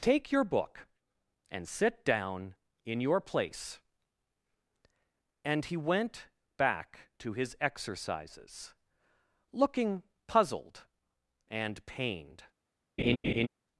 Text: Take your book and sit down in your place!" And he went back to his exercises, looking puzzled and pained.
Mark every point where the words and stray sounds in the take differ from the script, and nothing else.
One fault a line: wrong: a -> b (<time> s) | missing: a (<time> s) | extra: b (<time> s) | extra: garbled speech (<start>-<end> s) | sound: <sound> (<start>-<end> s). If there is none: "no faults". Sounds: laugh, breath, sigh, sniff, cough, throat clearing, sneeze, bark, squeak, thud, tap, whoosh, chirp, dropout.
sound: laugh (13.0-13.5 s)